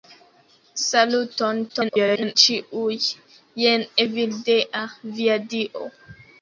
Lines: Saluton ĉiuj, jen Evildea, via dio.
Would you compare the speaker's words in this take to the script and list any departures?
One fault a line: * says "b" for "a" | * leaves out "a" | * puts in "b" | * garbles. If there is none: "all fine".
* garbles